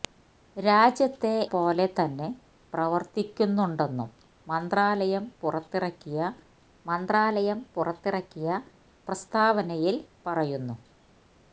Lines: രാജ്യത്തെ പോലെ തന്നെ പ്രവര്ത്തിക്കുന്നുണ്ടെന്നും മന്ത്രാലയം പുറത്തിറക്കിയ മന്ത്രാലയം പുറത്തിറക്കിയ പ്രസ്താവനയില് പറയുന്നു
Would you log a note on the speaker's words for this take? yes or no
no